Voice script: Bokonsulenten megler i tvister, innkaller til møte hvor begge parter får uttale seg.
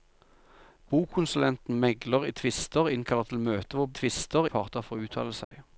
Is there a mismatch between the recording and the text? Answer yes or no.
yes